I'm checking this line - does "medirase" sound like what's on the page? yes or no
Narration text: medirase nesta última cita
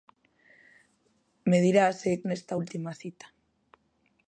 yes